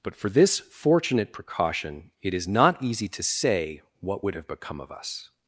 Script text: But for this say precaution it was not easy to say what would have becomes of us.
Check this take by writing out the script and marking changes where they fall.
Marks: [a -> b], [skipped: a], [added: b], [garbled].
But for this [say -> fortunate] precaution it [was -> is] not easy to say what would have [becomes -> become] of us.